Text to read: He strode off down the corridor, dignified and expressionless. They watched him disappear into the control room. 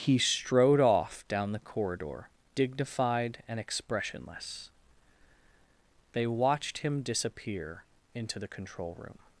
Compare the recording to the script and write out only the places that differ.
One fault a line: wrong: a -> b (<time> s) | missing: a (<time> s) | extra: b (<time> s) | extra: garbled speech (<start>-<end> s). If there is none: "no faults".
no faults